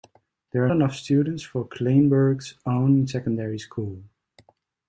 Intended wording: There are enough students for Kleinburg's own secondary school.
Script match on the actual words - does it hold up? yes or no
yes